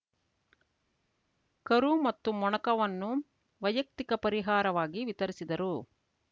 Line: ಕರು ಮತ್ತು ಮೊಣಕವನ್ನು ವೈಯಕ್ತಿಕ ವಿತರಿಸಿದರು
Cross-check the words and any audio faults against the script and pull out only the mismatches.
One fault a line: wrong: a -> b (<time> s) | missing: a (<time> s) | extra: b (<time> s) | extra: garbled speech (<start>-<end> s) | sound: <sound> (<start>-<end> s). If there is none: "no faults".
extra: ಪರಿಹಾರವಾಗಿ (4.2 s)